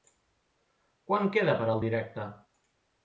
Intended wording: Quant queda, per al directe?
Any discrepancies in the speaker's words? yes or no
no